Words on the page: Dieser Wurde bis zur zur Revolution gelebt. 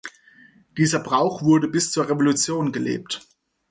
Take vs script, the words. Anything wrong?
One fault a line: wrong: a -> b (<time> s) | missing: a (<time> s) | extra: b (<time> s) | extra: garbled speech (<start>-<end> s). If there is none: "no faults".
extra: Brauch (1.0 s)
missing: zur (2.1 s)